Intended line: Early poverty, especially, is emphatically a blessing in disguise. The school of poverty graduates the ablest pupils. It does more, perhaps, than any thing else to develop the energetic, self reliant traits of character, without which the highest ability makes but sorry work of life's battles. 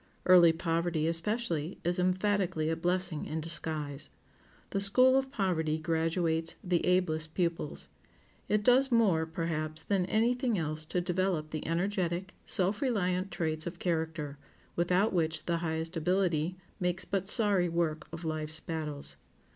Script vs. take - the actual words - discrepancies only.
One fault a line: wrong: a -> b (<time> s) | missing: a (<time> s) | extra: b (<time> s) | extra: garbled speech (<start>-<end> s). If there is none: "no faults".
no faults